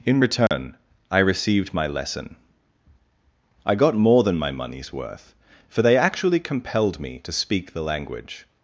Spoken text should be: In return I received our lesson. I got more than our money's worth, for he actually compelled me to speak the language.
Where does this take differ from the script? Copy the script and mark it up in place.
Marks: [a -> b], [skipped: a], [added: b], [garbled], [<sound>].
In return [dropout] I received [our -> my] lesson. I got more than [our -> my] money's worth, for [he -> they] actually compelled me to speak the language.